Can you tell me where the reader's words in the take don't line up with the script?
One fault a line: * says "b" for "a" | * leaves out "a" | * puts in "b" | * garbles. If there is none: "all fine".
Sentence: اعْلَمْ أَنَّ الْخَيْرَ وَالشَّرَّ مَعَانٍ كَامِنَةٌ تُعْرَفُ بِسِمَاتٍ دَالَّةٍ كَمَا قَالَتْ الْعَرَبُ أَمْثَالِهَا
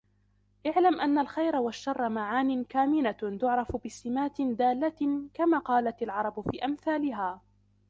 * puts in "فِي"